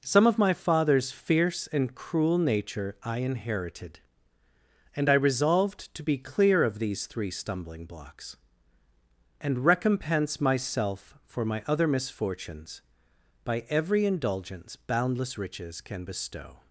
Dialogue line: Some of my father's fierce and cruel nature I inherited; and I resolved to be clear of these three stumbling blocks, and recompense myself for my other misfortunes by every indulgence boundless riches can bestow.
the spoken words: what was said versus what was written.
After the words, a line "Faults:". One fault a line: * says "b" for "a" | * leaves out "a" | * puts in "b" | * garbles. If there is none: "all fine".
Some of my father's fierce and cruel nature I inherited; and I resolved to be clear of these three stumbling blocks, and recompense myself for my other misfortunes by every indulgence boundless riches can bestow.
Faults:
all fine